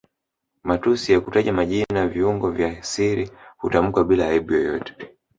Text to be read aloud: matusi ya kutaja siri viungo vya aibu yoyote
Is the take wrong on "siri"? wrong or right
wrong